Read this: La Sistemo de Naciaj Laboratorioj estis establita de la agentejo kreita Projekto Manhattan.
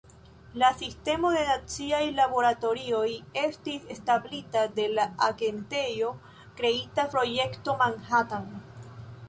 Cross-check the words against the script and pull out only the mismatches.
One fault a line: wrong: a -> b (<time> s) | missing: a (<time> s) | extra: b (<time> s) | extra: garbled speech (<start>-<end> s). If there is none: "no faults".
no faults